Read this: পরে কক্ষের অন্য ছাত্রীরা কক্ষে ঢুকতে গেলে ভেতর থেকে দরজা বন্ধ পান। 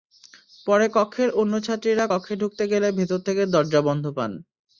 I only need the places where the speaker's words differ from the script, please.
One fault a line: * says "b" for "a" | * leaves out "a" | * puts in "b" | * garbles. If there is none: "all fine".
all fine